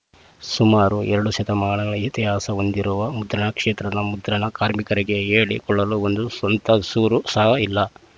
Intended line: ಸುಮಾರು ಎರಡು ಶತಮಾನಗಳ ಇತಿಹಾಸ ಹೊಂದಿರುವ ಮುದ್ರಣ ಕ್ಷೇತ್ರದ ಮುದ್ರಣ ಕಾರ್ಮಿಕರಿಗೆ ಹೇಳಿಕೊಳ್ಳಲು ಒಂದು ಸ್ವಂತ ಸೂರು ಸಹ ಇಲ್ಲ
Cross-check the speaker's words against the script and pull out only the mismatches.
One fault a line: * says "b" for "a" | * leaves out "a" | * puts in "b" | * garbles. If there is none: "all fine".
all fine